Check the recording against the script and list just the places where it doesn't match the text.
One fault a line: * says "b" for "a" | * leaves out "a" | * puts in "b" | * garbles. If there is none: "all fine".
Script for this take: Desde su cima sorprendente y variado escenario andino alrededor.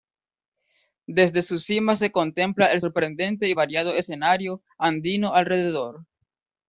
* puts in "se contempla el"